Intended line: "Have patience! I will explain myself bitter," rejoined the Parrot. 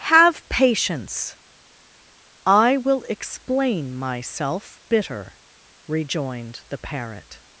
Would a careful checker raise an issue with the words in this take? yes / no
no